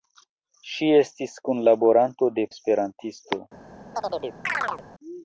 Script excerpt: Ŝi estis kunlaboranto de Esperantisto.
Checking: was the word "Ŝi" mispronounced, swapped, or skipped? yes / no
no